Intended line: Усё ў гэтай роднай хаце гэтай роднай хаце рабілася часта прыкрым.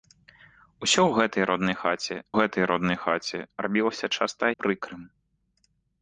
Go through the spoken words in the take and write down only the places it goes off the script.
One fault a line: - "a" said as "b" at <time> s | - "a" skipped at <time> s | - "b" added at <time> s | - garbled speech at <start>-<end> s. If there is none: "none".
none